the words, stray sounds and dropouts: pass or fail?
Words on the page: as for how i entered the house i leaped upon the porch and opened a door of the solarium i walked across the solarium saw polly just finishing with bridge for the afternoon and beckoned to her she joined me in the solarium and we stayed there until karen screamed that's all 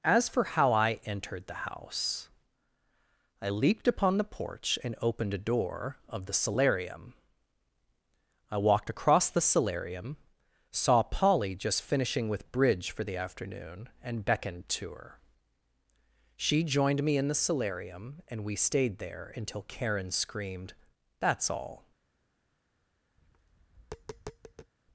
fail